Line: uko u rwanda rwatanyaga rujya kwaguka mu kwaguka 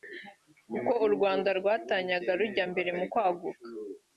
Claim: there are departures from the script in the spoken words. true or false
true